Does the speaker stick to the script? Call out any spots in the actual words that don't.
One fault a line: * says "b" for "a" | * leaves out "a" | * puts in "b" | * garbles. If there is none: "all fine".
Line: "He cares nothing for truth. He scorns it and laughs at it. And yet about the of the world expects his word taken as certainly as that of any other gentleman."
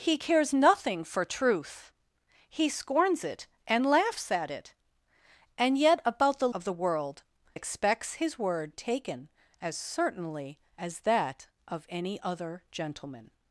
all fine